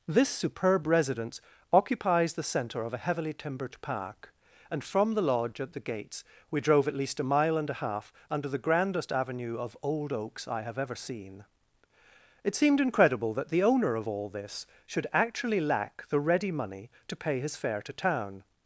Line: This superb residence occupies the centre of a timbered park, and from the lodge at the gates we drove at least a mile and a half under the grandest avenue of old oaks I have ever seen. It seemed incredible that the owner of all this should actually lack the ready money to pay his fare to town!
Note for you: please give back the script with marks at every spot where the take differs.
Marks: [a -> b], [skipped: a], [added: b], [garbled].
This superb residence occupies the centre of a [added: heavily] timbered park, and from the lodge at the gates we drove at least a mile and a half under the grandest avenue of old oaks I have ever seen. It seemed incredible that the owner of all this should actually lack the ready money to pay his fare to town!